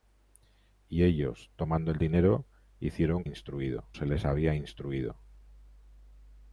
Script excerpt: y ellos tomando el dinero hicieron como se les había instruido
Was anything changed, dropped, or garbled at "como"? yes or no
yes